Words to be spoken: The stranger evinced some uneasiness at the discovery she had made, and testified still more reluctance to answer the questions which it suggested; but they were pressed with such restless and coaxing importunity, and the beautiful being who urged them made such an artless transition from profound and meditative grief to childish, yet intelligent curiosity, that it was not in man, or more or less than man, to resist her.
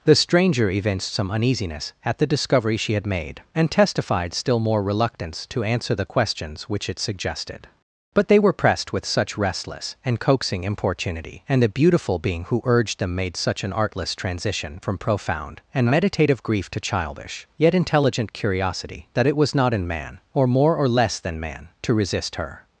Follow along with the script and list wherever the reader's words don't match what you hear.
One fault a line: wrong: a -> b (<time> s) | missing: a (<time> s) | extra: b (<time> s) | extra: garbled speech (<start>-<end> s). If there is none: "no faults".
no faults